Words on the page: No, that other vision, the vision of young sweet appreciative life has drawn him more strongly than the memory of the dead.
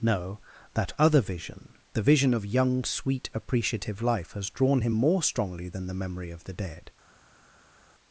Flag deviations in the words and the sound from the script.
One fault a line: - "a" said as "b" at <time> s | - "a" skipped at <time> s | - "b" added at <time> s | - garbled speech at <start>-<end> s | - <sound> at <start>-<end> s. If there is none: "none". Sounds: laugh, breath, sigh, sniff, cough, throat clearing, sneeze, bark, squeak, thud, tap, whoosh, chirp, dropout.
none